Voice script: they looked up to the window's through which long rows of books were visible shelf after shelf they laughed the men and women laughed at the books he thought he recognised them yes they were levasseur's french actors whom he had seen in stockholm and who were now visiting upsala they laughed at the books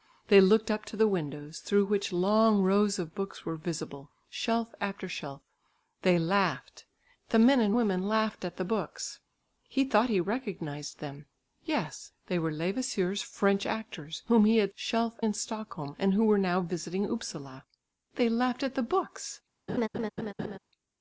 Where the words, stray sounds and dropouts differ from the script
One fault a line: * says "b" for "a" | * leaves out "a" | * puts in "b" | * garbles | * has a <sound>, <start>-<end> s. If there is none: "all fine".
* says "shelf" for "seen"
* has a laugh, 19.7-20.6 s